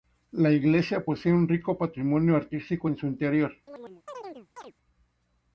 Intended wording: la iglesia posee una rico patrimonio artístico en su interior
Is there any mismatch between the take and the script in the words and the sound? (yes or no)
yes